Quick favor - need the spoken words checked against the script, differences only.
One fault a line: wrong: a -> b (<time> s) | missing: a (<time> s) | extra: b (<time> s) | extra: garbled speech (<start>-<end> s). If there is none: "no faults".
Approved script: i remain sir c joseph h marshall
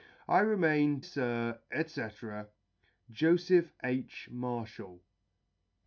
no faults